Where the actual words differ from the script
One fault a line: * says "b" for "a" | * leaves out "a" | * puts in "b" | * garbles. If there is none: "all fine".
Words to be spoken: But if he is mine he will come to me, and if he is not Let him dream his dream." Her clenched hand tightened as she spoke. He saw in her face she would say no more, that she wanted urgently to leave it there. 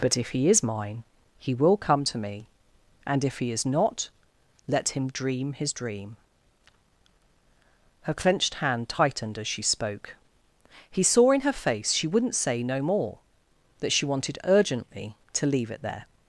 * says "wouldn't" for "would"